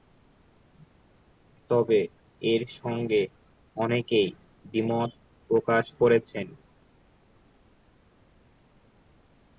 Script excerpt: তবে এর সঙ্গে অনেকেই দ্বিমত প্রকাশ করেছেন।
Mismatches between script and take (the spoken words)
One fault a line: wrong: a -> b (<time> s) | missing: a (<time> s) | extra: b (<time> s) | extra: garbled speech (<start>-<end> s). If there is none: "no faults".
no faults